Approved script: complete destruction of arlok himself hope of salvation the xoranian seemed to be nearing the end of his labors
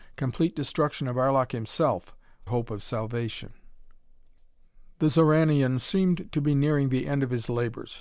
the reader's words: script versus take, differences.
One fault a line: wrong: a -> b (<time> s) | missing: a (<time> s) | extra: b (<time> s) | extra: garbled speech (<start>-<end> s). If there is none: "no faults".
no faults